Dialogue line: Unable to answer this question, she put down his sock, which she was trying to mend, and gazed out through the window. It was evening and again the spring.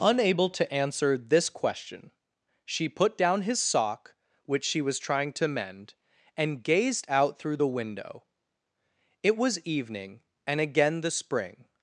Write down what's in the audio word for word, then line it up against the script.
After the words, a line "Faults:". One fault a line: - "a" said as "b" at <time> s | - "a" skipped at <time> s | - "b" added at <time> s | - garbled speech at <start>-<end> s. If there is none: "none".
Unable to answer this question, she put down his sock, which she was trying to mend, and gazed out through the window. It was evening and again the spring.
Faults:
none